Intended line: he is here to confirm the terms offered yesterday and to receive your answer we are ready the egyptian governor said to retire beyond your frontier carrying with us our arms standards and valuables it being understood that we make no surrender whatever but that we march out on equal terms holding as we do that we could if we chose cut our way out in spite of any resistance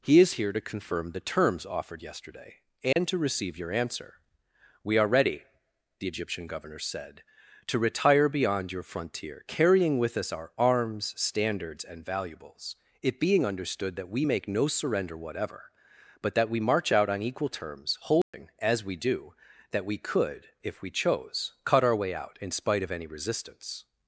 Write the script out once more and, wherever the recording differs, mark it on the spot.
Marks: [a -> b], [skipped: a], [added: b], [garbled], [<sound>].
he is here to confirm the terms offered yesterday and [dropout] to receive your answer we are ready the egyptian governor said to retire beyond your frontier carrying with us our arms standards and valuables it being understood that we make no surrender whatever but that we march out on equal terms holding [dropout] as we do that we could if we chose cut our way out in spite of any resistance